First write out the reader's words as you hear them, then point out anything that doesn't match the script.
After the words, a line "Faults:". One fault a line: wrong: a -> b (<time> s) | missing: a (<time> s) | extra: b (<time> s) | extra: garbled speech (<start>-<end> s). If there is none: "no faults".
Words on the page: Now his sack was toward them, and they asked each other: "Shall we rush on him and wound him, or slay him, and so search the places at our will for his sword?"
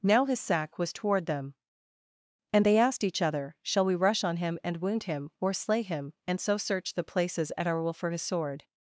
Now his sack was toward them, and they asked each other: "Shall we rush on him and wound him, or slay him, and so search the places at our will for his sword?"
Faults:
no faults